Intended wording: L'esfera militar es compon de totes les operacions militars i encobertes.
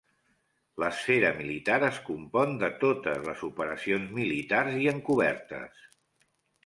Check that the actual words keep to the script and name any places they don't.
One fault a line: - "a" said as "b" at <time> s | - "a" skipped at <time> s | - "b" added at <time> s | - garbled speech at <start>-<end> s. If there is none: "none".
none